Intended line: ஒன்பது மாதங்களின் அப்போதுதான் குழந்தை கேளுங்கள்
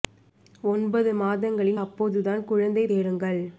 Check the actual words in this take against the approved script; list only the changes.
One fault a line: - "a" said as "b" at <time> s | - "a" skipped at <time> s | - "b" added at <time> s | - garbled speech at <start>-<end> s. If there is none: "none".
none